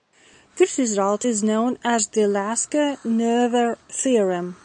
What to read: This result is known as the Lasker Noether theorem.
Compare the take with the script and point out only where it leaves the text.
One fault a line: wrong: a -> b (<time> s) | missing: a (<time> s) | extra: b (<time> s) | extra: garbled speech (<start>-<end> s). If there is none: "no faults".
no faults